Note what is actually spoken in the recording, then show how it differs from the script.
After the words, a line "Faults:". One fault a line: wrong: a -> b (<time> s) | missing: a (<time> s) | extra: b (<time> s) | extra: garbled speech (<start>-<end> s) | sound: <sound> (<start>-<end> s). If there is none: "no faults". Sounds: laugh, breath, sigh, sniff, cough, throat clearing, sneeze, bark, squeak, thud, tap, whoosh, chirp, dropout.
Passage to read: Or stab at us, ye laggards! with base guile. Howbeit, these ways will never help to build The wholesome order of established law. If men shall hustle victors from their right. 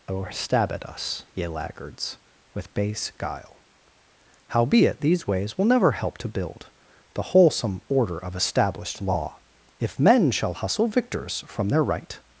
Or stab at us, ye laggards! with base guile. Howbeit, these ways will never help to build The wholesome order of established law. If men shall hustle victors from their right.
Faults:
no faults